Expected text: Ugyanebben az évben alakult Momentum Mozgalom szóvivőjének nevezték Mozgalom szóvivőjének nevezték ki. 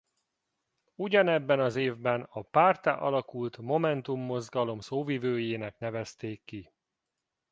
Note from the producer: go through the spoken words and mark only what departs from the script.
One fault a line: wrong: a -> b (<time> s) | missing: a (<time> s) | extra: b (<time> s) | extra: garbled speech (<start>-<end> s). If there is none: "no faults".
extra: a párttá (2.2 s)
missing: Mozgalom szóvivőjének nevezték (6.4 s)